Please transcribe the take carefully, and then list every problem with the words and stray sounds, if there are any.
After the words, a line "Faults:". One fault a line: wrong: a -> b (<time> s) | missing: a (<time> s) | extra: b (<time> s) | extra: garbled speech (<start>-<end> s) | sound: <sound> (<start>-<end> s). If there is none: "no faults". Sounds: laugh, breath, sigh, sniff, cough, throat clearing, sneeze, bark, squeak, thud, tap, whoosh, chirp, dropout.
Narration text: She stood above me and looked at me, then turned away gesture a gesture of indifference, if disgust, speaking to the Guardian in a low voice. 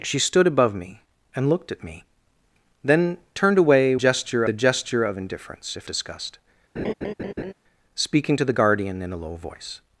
She stood above me and looked at me, then turned away gesture a gesture of indifference, if disgust, speaking to the Guardian in a low voice.
Faults:
sound: laugh (6.8-7.5 s)